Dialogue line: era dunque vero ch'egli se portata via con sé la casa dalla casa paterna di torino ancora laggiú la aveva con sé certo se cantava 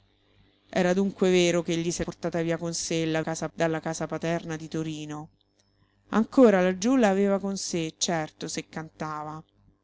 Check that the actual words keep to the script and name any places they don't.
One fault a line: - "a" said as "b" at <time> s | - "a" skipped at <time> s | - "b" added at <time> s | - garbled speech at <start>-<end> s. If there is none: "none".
none